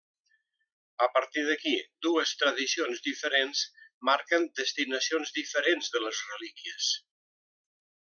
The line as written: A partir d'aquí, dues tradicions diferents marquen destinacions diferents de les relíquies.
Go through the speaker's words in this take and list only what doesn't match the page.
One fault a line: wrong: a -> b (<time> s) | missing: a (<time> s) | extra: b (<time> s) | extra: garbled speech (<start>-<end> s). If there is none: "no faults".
no faults